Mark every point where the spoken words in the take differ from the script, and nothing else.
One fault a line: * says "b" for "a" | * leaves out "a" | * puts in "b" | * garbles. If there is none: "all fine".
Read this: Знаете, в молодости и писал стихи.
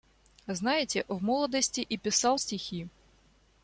all fine